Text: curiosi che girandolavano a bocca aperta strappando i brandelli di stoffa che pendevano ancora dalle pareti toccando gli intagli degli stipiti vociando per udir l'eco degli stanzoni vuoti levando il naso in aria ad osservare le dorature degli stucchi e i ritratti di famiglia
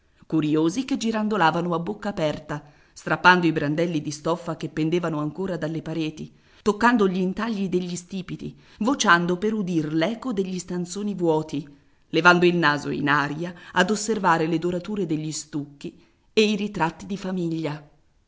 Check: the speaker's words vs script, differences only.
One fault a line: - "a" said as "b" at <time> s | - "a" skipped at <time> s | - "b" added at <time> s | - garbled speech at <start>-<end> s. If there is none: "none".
none